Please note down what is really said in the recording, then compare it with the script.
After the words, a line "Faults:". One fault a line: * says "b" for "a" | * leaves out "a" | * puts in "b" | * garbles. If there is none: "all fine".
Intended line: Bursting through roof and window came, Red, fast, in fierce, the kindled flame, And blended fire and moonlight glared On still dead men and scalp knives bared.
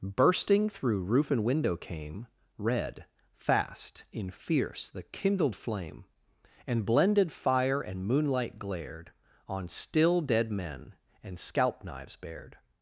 Bursting through roof and window came, Red, fast, in fierce, the kindled flame, And blended fire and moonlight glared On still dead men and scalp knives bared.
Faults:
all fine